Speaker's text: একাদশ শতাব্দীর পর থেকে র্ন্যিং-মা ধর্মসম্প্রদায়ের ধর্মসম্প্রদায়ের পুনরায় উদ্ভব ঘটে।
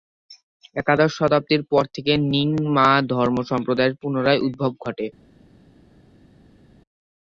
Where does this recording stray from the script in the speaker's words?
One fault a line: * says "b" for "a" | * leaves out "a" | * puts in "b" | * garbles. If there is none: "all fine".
* leaves out "ধর্মসম্প্রদায়ের"